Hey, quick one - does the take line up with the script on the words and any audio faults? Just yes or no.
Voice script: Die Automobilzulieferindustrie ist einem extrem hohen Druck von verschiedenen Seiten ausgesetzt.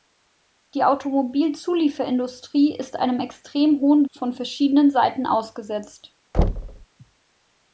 no